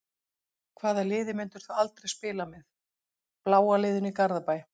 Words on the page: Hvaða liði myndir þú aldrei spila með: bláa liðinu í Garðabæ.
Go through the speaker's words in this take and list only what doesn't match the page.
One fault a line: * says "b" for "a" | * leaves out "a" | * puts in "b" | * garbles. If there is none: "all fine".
all fine